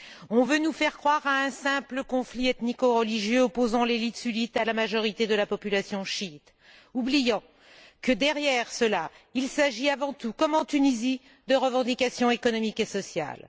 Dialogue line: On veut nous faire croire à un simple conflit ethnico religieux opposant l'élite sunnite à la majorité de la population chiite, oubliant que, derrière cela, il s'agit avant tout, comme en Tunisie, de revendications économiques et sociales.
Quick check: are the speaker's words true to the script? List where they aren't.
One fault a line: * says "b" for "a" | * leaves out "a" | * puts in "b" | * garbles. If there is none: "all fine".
all fine